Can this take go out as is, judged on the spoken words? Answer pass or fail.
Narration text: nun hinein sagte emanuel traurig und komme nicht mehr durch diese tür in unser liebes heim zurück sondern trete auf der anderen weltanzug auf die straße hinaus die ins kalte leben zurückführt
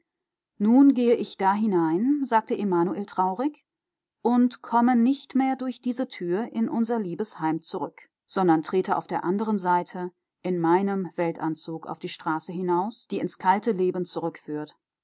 fail